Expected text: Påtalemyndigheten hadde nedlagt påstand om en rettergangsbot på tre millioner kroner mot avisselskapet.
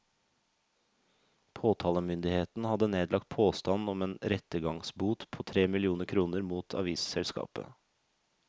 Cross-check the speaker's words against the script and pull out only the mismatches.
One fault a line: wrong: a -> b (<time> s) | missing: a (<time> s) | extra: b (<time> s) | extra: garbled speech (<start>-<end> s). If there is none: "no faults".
no faults